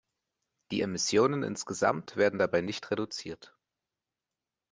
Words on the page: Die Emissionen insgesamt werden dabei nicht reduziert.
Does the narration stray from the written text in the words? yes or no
no